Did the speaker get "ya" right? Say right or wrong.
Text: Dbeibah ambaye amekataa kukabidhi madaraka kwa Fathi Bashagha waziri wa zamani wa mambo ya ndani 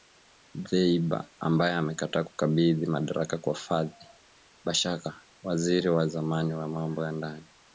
right